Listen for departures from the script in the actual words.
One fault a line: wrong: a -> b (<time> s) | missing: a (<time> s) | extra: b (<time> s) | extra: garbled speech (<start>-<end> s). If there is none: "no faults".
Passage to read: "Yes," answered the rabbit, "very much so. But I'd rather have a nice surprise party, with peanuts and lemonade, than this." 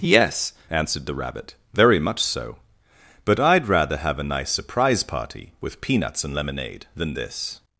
no faults